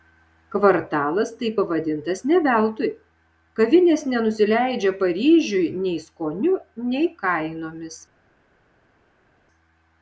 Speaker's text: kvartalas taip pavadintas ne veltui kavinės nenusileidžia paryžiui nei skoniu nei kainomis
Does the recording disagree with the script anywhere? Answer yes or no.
no